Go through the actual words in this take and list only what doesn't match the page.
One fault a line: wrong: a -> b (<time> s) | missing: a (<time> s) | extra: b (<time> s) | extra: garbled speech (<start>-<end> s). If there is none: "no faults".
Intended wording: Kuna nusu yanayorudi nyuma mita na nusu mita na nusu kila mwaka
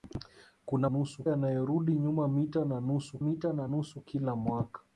no faults